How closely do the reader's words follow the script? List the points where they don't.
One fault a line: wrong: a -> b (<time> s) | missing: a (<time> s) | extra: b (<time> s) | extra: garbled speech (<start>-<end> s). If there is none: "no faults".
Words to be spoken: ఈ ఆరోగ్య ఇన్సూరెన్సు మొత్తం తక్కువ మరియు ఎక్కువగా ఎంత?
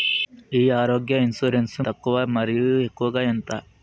missing: మొత్తం (1.8 s)